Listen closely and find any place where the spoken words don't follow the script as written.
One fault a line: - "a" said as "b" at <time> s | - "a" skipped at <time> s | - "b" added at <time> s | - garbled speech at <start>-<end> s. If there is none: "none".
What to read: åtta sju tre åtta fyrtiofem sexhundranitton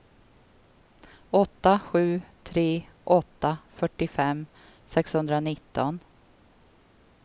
none